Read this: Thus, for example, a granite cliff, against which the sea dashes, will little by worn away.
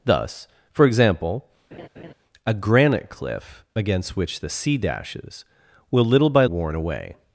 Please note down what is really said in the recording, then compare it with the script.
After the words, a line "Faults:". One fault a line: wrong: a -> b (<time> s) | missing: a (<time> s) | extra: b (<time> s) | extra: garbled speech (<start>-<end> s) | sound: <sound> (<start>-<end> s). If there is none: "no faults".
Thus, for example, a granite cliff, against which the sea dashes, will little by worn away.
Faults:
sound: laugh (1.7-2.1 s)